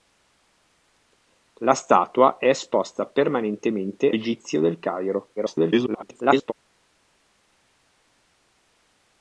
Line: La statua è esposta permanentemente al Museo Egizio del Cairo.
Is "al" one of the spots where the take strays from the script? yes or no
yes